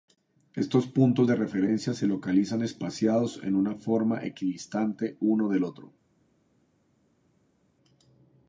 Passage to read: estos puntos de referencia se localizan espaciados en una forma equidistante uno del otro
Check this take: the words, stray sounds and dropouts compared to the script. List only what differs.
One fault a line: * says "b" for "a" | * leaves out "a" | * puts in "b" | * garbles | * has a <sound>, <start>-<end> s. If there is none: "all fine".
all fine